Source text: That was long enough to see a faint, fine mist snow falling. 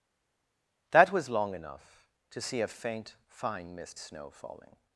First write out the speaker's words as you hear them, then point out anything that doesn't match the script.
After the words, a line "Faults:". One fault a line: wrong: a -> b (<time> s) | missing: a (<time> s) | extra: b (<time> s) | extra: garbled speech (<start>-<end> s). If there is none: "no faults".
That was long enough to see a faint, fine mist snow falling.
Faults:
no faults